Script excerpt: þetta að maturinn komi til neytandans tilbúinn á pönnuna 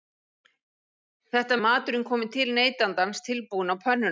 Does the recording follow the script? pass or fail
pass